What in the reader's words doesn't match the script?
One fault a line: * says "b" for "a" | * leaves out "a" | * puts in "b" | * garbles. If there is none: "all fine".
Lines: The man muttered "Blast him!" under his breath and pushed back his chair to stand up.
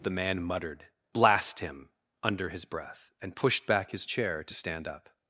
all fine